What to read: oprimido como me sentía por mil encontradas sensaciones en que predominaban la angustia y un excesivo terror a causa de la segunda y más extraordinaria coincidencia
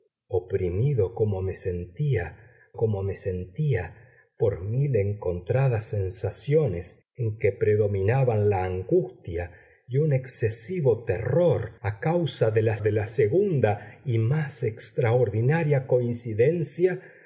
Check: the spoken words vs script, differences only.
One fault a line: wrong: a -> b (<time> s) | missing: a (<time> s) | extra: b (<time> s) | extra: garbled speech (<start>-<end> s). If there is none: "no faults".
extra: como me sentía (2.7 s)
extra: de la (12.8 s)